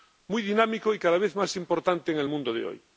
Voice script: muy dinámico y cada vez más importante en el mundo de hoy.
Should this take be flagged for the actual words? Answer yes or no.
no